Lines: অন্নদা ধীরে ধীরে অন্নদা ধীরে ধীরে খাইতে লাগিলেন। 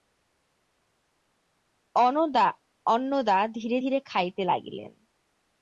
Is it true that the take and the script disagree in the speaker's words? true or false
true